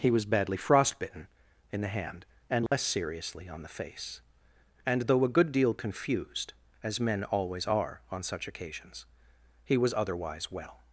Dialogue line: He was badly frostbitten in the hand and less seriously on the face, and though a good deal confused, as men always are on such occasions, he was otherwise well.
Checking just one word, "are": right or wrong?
right